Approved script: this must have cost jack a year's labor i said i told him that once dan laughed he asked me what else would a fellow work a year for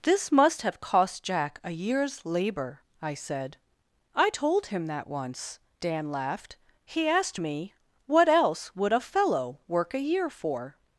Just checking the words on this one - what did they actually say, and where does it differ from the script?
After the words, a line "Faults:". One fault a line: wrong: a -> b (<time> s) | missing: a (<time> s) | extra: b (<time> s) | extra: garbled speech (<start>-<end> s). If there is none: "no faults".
this must have cost jack a year's labor i said i told him that once dan laughed he asked me what else would a fellow work a year for
Faults:
no faults